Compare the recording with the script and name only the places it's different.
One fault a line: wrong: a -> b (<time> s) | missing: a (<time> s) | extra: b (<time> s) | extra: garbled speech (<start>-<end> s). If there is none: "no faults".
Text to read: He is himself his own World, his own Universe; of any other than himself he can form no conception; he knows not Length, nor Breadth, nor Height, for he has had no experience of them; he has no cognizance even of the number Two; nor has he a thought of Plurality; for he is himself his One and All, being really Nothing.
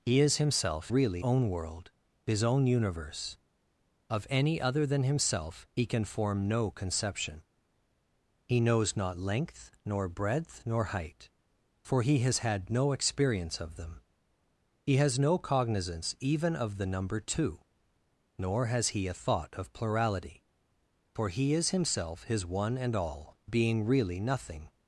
wrong: his -> really (0.9 s)